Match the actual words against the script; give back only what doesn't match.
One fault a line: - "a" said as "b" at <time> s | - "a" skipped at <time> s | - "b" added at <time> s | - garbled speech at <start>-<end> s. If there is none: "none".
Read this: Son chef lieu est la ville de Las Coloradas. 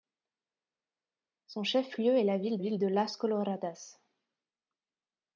- "ville" added at 2.6 s